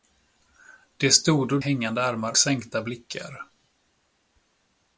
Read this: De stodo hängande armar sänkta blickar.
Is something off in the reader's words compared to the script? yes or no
no